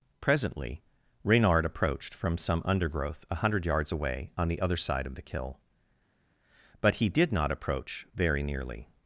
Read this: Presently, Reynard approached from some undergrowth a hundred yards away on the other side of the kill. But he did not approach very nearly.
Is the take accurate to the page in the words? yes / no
yes